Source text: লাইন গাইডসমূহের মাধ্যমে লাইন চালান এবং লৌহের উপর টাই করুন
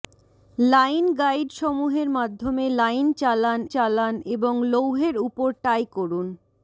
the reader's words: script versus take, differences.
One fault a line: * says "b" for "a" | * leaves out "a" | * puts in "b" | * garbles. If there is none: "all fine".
* puts in "চালান"